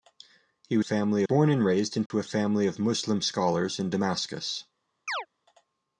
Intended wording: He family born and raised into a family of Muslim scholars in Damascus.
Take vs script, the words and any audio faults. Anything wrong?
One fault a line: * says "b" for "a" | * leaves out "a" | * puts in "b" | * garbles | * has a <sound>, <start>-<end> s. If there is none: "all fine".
* has a dropout, 2.1-2.1 s
* has a chirp, 5.1-5.3 s